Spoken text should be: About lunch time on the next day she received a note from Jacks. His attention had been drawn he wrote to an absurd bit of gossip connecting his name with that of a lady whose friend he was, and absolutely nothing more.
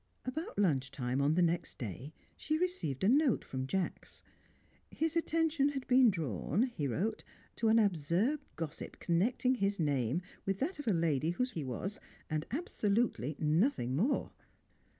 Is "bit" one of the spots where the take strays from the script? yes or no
yes